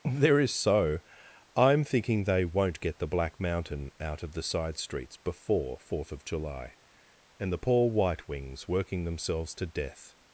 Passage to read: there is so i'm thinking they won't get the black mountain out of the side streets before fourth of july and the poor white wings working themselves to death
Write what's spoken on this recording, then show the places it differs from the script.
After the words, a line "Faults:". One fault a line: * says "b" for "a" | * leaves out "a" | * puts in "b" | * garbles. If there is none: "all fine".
there is so i'm thinking they won't get the black mountain out of the side streets before fourth of july and the poor white wings working themselves to death
Faults:
all fine